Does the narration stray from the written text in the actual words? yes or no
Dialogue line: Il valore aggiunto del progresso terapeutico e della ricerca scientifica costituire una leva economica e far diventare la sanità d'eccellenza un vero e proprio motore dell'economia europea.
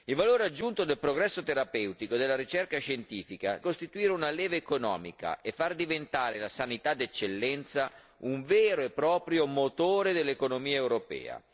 no